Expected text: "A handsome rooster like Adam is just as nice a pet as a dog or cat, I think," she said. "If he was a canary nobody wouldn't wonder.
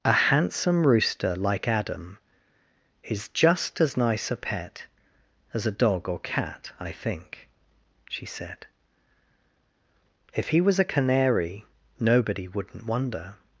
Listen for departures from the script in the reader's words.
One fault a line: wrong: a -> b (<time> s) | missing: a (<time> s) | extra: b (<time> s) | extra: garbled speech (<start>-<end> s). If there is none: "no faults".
no faults